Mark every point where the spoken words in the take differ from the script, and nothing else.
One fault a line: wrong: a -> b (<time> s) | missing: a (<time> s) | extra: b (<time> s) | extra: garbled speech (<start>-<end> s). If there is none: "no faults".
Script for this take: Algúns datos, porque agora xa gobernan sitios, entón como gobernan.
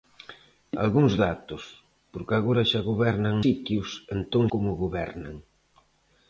no faults